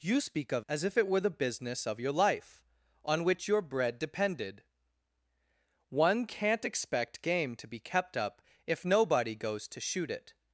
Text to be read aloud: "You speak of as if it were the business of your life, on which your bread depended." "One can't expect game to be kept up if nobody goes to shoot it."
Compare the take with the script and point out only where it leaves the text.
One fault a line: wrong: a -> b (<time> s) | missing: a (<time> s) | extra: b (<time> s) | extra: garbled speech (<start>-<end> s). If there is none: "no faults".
no faults